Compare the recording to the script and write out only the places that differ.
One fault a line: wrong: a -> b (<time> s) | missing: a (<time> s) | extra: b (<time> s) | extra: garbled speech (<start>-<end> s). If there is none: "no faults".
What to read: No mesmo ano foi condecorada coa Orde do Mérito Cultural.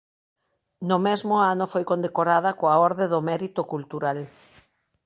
no faults